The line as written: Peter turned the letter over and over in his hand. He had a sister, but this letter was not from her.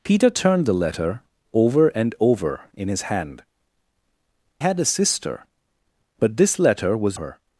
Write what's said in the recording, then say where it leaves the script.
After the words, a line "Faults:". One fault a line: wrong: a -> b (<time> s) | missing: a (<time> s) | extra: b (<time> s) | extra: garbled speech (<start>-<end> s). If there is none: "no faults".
Peter turned the letter over and over in his hand. Had a sister, but this letter was her.
Faults:
missing: He (3.4 s)
missing: not from (7.2 s)